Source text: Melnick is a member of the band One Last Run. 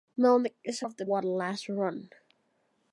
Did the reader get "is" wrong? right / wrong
right